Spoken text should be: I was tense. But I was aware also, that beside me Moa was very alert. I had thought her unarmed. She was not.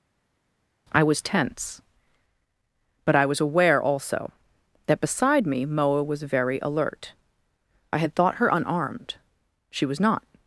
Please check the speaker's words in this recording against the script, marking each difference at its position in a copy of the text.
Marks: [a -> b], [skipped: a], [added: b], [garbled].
I was tense. But I was aware also, that beside me Moa was very alert. I had thought her unarmed. She was not.